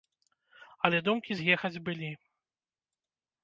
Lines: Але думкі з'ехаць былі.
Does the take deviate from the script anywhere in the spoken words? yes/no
no